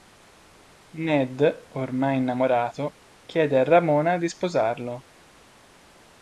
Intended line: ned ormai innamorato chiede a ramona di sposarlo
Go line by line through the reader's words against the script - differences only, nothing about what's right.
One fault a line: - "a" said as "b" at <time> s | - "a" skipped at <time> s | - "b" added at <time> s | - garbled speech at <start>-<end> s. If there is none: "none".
none